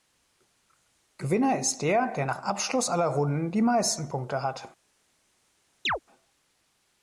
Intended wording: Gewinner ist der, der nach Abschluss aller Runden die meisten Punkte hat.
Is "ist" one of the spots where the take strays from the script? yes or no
no